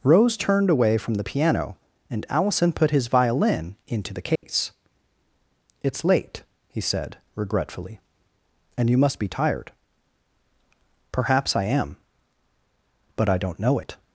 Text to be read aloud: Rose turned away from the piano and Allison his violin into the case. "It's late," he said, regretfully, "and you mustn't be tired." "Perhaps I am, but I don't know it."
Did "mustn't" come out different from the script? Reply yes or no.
yes